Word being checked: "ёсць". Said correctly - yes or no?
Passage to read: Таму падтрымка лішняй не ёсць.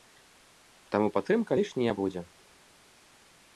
no